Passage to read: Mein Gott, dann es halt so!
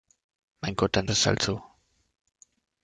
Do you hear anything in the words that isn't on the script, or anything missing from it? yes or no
no